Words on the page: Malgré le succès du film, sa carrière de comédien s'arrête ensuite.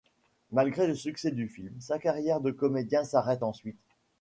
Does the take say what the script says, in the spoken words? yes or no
yes